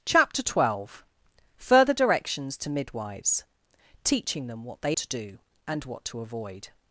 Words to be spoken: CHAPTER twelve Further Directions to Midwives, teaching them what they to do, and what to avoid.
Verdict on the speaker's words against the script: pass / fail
pass